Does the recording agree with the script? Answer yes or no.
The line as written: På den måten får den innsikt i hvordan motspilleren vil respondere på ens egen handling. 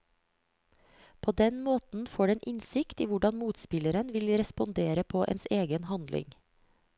yes